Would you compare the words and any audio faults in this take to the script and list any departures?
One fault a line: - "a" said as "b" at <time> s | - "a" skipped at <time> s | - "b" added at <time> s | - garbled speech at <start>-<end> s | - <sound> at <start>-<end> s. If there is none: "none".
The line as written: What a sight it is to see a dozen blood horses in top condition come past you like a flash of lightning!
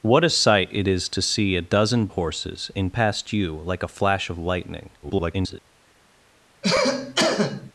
- "blood" skipped at 2.1 s
- "top condition come" skipped at 2.9 s
- garbled speech at 5.0-5.6 s
- cough at 6.6-7.7 s